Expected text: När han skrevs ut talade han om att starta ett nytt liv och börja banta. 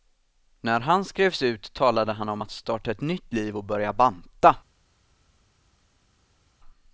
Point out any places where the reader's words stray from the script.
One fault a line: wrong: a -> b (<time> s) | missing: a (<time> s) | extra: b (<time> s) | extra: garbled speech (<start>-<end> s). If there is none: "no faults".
no faults